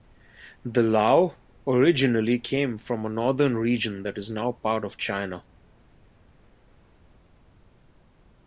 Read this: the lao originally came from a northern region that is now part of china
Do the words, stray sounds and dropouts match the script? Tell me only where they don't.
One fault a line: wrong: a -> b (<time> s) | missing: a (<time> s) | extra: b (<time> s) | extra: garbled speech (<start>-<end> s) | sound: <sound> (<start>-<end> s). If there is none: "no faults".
no faults